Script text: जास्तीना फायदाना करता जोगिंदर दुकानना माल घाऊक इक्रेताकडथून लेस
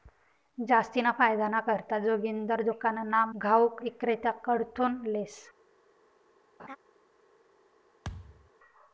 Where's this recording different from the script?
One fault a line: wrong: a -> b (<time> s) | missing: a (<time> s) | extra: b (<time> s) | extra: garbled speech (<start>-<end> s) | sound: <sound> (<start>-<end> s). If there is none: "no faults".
missing: माल (3.2 s)
sound: laugh (6.6-6.8 s)
sound: thud (8.0-8.5 s)